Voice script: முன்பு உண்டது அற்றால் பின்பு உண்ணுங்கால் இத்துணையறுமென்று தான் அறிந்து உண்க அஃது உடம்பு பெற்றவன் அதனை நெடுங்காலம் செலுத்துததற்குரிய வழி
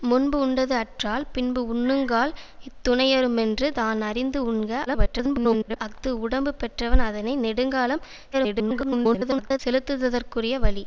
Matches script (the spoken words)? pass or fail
fail